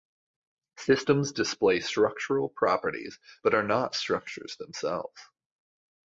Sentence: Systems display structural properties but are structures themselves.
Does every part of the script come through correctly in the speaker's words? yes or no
no